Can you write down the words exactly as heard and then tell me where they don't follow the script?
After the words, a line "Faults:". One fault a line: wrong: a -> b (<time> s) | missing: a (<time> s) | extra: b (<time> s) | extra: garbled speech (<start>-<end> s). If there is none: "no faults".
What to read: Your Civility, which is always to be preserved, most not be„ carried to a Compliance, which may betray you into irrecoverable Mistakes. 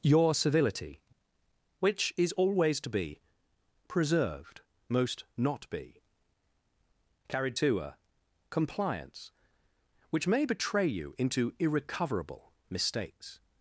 Your Civility, which is always to be preserved, most not be„ carried to a Compliance, which may betray you into irrecoverable Mistakes.
Faults:
no faults